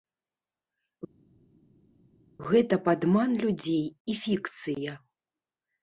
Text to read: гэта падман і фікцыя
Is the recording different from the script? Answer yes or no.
yes